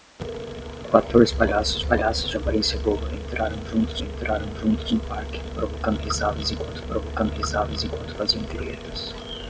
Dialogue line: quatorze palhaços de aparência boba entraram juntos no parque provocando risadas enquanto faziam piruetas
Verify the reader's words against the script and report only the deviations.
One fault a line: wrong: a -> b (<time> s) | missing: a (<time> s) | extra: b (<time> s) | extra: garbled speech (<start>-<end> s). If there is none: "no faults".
extra: palhaços (1.8 s)
extra: entraram juntos (4.0 s)
extra: provocando risadas enquanto (6.9 s)